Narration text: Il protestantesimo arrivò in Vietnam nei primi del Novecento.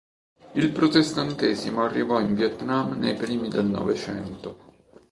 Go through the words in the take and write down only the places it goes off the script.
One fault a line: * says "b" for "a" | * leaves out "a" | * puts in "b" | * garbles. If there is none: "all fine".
all fine